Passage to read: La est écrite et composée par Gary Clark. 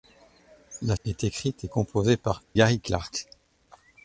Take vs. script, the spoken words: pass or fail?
pass